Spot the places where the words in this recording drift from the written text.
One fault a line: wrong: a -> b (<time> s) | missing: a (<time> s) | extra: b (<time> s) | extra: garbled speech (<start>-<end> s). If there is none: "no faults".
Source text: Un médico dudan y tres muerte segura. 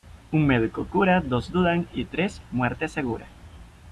extra: cura dos (0.9 s)